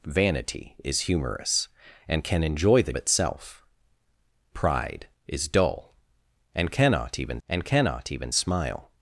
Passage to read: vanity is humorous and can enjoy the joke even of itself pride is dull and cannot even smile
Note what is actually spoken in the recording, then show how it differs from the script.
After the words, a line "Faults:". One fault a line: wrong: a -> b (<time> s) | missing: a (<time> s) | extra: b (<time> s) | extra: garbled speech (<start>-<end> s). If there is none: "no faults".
vanity is humorous and can enjoy the itself pride is dull and cannot even and cannot even smile
Faults:
missing: joke even of (2.9 s)
extra: and cannot even (7.5 s)